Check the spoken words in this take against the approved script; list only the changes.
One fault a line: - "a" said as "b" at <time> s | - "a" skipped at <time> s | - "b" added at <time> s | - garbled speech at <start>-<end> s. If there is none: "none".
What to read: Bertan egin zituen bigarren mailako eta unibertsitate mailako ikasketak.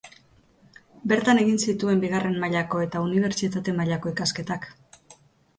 none